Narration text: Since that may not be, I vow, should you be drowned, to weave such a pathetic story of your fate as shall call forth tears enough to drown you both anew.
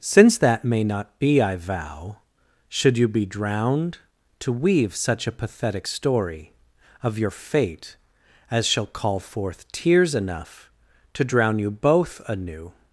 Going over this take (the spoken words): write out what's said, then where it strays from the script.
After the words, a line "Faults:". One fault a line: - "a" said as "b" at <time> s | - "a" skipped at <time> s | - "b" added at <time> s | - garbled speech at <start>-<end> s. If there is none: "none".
Since that may not be, I vow, should you be drowned, to weave such a pathetic story of your fate as shall call forth tears enough to drown you both anew.
Faults:
none